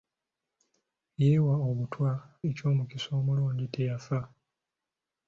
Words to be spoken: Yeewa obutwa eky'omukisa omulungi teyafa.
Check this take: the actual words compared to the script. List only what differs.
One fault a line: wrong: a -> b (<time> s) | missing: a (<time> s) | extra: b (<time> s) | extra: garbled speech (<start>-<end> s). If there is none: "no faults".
no faults